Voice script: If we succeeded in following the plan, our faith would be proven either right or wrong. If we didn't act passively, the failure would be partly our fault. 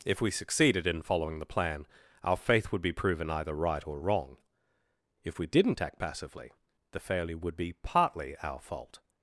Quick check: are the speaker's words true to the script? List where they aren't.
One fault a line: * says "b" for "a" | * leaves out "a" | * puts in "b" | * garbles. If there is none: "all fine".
all fine